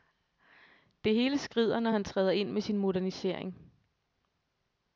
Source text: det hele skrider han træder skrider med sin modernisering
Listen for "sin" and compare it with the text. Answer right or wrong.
right